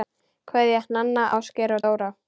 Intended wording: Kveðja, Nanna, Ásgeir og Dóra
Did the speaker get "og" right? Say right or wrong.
right